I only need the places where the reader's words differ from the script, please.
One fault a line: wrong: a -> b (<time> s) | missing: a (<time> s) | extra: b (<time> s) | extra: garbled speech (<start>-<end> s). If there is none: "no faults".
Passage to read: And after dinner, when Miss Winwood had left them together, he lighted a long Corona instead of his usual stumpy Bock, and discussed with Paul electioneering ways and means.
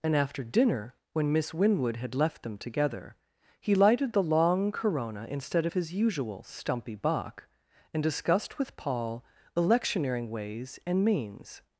wrong: a -> the (4.1 s)